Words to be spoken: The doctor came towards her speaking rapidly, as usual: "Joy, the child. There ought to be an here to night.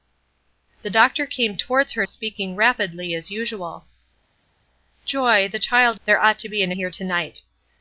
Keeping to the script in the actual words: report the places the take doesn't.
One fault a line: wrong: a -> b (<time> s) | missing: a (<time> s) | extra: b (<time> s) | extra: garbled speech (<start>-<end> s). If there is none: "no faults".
no faults